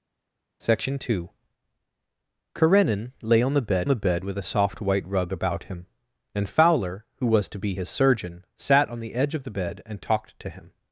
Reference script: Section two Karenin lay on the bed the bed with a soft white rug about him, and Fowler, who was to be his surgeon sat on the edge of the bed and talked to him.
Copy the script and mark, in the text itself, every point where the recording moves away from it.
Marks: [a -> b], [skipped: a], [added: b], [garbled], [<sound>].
Section two Karenin lay on the bed the bed with a soft white rug about him, and Fowler, who was to be his surgeon sat on the edge of the bed and talked to him.